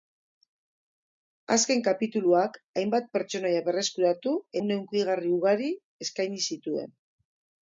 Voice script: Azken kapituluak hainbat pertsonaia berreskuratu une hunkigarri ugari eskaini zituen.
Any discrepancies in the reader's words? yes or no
no